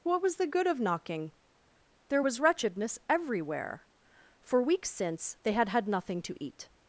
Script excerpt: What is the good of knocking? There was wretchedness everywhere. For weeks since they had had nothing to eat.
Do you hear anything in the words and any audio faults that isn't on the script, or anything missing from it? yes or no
yes